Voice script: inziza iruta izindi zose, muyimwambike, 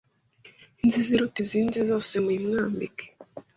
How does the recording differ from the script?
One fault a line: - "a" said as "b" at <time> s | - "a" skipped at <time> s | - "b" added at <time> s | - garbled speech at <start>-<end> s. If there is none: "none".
none